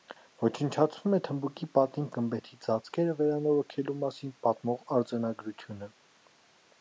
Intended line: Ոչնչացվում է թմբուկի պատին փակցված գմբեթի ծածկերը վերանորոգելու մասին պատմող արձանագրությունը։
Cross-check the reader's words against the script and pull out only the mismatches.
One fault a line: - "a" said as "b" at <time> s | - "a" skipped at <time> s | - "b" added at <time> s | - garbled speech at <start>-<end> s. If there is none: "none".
- "փակցված" skipped at 2.1 s